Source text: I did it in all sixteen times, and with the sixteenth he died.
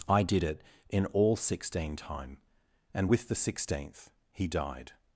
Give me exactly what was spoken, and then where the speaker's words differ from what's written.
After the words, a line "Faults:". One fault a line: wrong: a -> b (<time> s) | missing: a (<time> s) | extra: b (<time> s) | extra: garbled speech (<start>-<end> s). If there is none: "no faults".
I did it in all sixteen time, and with the sixteenth he died.
Faults:
wrong: times -> time (1.9 s)